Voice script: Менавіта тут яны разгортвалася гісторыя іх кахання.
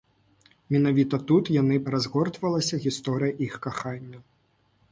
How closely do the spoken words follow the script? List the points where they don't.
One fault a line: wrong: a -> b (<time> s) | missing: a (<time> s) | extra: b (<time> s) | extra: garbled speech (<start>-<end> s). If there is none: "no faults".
no faults